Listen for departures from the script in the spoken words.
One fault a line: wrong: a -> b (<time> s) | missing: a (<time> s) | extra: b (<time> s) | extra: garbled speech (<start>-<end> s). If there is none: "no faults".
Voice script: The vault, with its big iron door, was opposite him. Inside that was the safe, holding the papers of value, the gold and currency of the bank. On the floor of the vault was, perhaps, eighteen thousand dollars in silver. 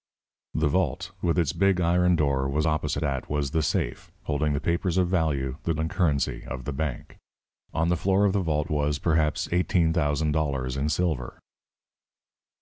missing: him Inside (3.0 s)
missing: gold (5.7 s)